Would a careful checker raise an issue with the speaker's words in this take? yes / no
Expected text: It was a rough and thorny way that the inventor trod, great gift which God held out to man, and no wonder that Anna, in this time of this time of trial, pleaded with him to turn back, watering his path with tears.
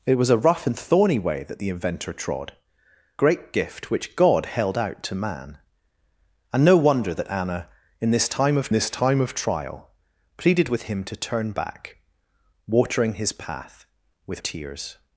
no